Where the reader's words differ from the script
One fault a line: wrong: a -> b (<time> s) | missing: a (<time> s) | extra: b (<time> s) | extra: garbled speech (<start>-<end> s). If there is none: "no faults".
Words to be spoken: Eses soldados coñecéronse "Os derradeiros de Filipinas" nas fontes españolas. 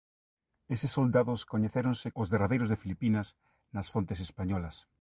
no faults